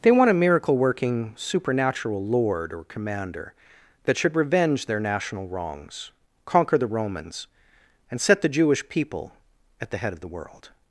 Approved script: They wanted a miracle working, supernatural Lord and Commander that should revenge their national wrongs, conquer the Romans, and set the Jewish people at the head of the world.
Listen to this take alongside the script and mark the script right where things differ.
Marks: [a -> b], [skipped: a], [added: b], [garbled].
They [wanted -> want] a miracle working, supernatural Lord [and -> or] Commander that should revenge their national wrongs, conquer the Romans, and set the Jewish people at the head of the world.